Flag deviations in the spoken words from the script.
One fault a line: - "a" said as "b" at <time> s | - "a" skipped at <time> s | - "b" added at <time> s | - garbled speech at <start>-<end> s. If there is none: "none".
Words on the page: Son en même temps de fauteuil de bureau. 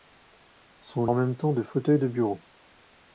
none